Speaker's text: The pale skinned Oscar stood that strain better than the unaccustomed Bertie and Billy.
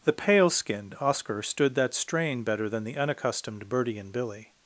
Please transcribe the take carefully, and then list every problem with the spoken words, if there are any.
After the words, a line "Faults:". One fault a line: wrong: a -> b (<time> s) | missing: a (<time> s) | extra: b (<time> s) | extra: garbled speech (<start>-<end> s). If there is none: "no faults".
The pale skinned Oscar stood that strain better than the unaccustomed Bertie and Billy.
Faults:
no faults